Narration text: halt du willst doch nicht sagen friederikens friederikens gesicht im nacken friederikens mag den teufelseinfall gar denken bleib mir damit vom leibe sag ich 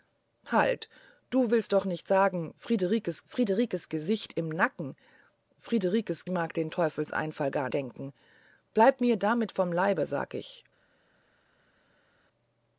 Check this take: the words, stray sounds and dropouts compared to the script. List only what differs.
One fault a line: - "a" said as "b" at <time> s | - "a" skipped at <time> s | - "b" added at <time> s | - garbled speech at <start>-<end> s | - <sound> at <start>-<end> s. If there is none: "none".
none